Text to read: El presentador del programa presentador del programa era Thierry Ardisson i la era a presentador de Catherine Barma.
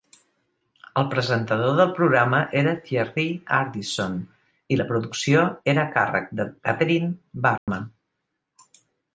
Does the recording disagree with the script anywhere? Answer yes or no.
yes